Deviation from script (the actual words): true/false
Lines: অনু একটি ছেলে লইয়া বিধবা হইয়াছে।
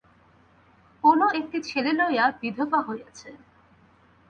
false